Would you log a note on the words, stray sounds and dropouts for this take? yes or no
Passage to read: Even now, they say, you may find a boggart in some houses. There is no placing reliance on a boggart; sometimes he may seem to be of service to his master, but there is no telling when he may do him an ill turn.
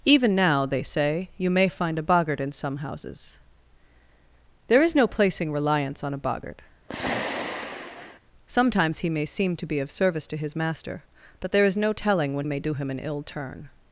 yes